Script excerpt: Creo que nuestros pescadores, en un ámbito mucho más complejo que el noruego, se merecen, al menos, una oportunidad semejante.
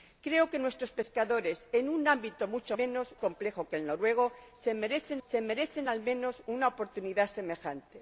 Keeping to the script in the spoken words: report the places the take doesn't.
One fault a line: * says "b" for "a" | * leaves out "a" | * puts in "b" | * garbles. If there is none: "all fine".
* says "menos" for "más"
* puts in "se merecen"